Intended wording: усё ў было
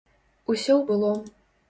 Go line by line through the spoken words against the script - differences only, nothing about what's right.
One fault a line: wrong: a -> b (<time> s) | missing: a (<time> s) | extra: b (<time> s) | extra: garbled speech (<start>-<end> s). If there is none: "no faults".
no faults